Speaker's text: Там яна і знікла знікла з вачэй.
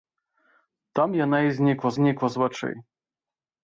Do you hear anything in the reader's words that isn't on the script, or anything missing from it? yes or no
no